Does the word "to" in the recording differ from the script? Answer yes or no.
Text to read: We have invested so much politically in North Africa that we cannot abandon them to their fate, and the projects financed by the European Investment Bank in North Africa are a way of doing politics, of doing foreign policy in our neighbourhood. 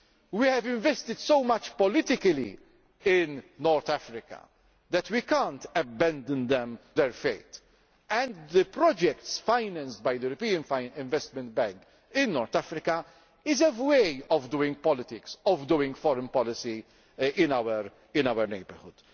yes